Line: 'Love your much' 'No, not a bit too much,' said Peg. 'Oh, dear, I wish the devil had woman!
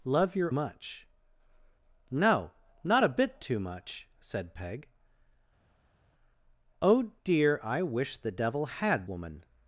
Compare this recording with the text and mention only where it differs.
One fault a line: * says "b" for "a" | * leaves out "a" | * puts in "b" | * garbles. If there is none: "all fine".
all fine